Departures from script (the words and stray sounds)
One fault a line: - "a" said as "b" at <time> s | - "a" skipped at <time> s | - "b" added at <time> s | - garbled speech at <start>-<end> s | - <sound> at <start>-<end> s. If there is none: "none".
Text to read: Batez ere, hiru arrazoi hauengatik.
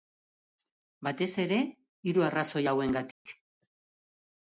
- dropout at 3.1-3.3 s